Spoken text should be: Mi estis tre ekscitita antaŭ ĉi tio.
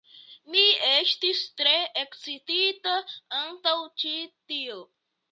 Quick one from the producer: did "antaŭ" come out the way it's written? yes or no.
yes